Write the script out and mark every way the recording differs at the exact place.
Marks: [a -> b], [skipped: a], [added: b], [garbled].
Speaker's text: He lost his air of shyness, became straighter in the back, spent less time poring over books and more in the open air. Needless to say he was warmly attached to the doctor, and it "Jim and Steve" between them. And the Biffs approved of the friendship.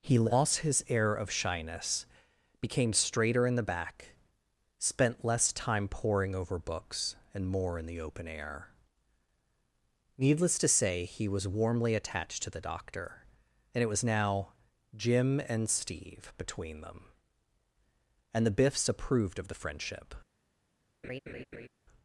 He lost his air of shyness, became straighter in the back, spent less time poring over books and more in the open air. Needless to say he was warmly attached to the doctor, and it [added: was now] "Jim and Steve" between them. And the Biffs approved of the friendship.